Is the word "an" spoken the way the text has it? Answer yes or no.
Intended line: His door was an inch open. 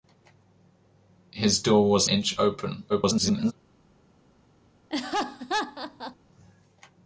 no